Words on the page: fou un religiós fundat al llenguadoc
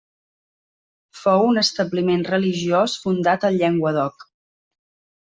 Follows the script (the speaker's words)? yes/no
no